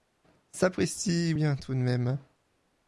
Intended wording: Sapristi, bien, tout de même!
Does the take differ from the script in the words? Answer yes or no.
no